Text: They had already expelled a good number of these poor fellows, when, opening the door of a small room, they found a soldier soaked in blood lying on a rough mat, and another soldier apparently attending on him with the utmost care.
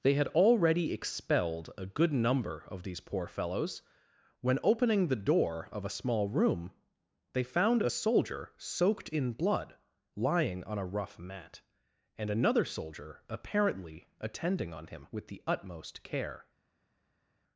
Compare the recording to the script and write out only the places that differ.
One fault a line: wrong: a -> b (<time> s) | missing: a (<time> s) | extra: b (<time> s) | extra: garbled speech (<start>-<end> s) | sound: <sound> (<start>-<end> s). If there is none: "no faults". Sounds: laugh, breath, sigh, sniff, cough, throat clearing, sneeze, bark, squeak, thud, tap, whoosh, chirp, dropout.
no faults